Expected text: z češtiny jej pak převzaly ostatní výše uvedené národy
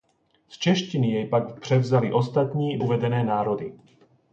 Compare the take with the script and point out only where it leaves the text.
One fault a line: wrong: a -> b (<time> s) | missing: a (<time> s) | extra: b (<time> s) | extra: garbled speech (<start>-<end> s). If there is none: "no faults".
missing: výše (2.8 s)